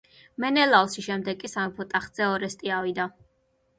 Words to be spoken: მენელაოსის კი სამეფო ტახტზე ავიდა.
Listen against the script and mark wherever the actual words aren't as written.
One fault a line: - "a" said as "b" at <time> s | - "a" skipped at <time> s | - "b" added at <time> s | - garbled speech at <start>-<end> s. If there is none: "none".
- "შემდეგ" added at 1.1 s
- "ორესტე" added at 2.3 s